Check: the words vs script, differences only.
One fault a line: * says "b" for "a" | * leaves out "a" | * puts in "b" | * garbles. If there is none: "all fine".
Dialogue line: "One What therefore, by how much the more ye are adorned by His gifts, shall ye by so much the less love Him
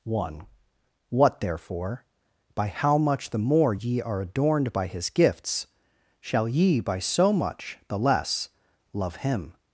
all fine